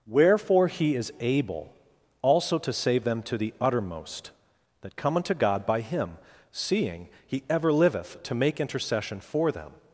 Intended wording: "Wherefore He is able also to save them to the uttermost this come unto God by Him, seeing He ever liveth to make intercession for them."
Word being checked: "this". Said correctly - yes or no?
no